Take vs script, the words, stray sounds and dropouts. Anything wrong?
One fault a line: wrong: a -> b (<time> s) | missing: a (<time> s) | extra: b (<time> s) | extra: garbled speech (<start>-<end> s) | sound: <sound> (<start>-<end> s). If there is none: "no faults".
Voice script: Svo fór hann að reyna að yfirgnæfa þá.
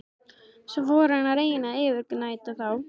no faults